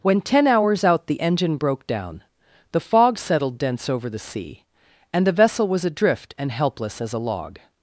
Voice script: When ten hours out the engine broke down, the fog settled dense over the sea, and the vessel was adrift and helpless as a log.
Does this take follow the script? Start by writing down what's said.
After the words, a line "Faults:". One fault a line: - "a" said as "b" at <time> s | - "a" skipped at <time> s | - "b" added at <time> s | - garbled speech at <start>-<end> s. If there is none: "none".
When ten hours out the engine broke down, the fog settled dense over the sea, and the vessel was adrift and helpless as a log.
Faults:
none